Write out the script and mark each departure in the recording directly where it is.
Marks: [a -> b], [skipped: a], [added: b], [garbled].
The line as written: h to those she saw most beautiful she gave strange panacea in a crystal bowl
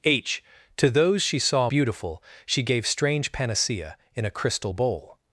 h to those she saw [skipped: most] beautiful she gave strange panacea in a crystal bowl